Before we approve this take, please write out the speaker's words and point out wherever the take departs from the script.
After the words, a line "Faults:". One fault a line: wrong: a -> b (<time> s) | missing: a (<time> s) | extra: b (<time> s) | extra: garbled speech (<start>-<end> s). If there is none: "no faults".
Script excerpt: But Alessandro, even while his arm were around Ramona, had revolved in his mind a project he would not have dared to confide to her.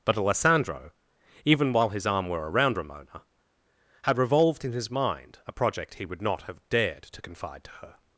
But Alessandro, even while his arm were around Ramona, had revolved in his mind a project he would not have dared to confide to her.
Faults:
no faults